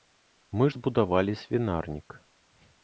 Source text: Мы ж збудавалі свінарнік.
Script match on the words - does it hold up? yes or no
no